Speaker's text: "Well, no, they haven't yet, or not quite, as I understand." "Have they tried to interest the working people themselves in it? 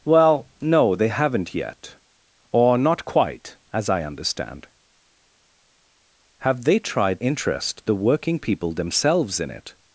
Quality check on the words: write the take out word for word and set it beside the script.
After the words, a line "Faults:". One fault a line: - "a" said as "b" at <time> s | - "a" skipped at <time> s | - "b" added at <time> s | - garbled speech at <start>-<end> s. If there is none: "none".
"Well, no, they haven't yet, or not quite, as I understand." "Have they tried interest the working people themselves in it?
Faults:
- "to" skipped at 7.2 s